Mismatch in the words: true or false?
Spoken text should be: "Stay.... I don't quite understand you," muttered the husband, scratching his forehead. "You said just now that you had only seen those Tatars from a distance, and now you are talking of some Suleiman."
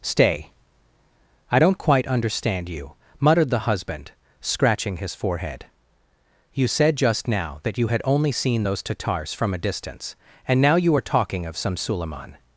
false